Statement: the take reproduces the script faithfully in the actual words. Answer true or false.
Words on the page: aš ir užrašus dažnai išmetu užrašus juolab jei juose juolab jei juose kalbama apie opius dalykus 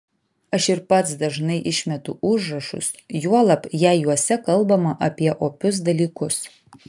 false